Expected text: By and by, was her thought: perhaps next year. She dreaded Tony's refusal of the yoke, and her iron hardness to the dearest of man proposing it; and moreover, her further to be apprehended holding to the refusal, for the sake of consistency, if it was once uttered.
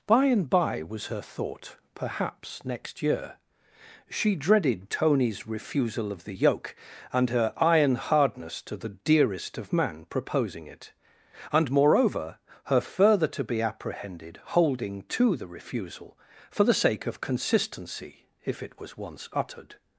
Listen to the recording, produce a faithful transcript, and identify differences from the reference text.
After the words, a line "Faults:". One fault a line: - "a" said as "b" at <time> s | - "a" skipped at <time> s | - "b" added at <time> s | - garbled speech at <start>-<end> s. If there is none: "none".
By and by, was her thought: perhaps next year. She dreaded Tony's refusal of the yoke, and her iron hardness to the dearest of man proposing it; and moreover, her further to be apprehended holding to the refusal, for the sake of consistency, if it was once uttered.
Faults:
none